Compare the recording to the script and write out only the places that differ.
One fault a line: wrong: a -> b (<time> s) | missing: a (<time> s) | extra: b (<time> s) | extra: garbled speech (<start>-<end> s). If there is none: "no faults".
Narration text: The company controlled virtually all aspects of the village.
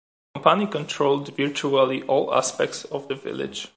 no faults